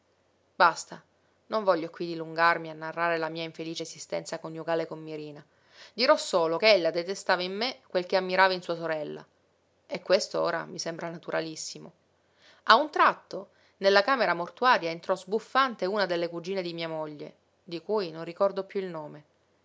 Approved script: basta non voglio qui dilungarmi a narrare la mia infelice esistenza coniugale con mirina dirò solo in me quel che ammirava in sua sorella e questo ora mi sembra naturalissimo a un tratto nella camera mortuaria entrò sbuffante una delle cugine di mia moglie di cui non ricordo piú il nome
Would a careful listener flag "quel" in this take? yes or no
no